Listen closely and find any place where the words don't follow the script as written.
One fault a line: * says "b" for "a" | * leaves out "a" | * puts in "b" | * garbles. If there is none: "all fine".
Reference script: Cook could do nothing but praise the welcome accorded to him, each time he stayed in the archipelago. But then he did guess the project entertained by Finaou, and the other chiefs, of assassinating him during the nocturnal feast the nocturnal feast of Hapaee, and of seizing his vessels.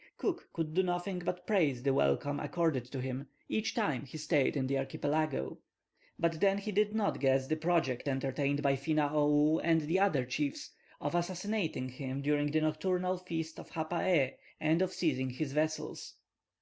* puts in "not"
* leaves out "the nocturnal feast"